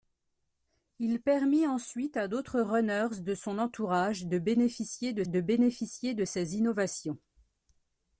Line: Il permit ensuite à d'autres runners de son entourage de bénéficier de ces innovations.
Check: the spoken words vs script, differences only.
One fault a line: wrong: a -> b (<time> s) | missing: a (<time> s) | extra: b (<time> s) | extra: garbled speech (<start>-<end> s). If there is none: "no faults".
extra: de bénéficier de (5.3 s)